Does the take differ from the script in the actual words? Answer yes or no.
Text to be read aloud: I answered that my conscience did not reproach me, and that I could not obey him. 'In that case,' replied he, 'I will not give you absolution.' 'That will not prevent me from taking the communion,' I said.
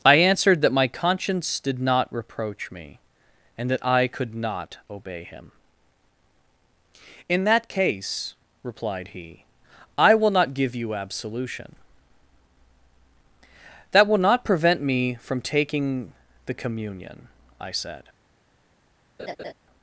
no